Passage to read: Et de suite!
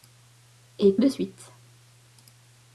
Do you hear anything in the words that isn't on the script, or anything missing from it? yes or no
no